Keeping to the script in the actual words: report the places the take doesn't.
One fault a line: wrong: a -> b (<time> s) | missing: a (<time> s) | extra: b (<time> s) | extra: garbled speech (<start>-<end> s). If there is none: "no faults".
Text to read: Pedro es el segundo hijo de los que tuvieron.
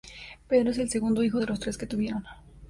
extra: tres (1.6 s)